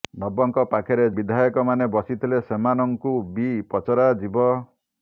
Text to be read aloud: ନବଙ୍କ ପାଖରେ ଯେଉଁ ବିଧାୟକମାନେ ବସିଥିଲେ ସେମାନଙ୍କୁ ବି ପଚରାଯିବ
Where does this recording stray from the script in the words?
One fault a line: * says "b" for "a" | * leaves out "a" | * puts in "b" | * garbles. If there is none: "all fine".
* leaves out "ଯେଉଁ"